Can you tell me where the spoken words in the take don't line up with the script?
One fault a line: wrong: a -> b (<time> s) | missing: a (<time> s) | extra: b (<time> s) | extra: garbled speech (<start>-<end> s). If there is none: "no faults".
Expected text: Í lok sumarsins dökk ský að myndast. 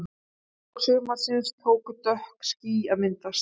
extra: tóku (1.7 s)